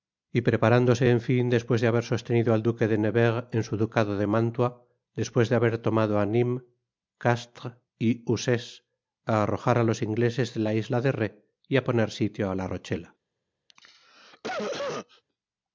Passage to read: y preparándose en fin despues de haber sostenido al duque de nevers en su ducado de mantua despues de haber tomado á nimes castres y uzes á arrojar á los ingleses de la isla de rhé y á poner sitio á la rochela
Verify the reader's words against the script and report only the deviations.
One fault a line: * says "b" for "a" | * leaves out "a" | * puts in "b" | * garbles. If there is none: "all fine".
all fine